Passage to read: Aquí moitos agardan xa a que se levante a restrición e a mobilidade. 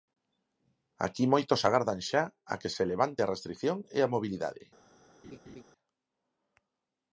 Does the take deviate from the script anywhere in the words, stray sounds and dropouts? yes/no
yes